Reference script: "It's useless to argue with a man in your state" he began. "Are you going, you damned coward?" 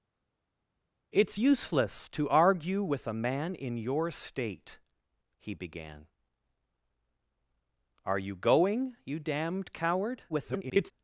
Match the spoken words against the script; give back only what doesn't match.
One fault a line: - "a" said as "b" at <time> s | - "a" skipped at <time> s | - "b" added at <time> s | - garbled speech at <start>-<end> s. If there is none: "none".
- garbled speech at 10.3-10.9 s